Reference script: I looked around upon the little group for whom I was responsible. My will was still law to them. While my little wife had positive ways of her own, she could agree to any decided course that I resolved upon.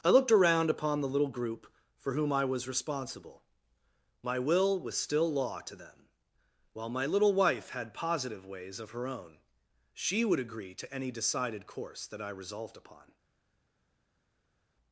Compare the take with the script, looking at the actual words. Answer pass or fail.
fail